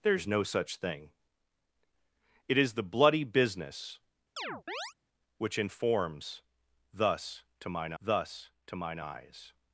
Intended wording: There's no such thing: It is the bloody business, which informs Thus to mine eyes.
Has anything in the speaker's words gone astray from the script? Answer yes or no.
yes